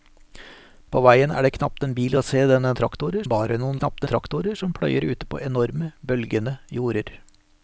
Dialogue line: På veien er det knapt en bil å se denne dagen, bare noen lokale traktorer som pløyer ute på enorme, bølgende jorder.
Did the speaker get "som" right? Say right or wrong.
right